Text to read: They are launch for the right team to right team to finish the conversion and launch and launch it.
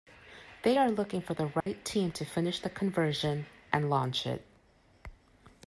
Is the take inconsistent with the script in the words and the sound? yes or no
yes